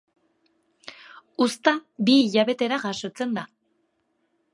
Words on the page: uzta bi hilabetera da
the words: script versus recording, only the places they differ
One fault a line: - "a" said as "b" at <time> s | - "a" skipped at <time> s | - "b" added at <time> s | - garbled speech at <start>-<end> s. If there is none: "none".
- "jasotzen" added at 2.8 s